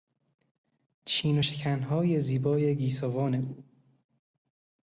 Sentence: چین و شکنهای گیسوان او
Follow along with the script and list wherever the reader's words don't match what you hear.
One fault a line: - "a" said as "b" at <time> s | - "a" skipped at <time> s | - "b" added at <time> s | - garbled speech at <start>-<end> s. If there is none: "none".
- "زیبای" added at 2.2 s